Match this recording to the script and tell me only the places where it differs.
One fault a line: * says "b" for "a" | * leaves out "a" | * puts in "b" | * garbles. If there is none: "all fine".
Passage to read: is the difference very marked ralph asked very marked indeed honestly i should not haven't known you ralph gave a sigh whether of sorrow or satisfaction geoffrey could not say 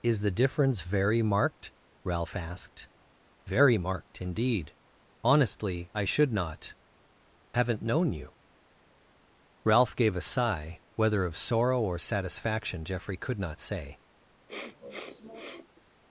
all fine